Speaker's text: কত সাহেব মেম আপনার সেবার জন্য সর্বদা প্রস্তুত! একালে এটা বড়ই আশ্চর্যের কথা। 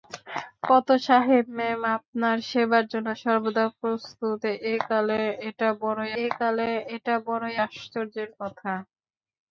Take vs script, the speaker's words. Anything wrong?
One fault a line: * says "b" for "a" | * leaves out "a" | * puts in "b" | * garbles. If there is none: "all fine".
* puts in "একালে এটা বড়ই"